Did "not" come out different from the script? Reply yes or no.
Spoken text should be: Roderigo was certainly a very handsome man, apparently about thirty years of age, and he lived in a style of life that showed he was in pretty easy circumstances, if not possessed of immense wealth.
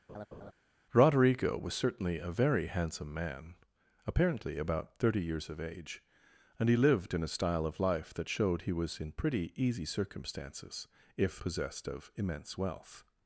yes